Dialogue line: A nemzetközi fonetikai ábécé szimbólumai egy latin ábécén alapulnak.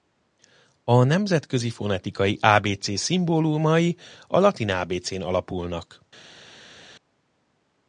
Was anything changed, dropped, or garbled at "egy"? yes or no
yes